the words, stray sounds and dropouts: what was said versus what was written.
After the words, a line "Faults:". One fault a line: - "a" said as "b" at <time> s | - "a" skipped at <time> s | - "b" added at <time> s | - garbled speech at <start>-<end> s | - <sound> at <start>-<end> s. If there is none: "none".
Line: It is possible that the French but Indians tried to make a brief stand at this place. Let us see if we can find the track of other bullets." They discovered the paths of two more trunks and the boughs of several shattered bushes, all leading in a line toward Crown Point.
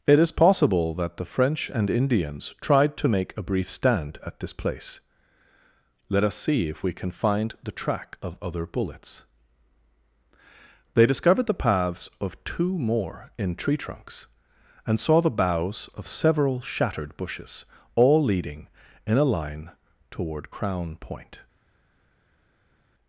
It is possible that the French and Indians tried to make a brief stand at this place. Let us see if we can find the track of other bullets." They discovered the paths of two more in tree trunks and saw the boughs of several shattered bushes, all leading in a line toward Crown Point.
Faults:
- "but" said as "and" at 1.7 s
- "in tree" added at 13.4 s
- "saw" added at 15.0 s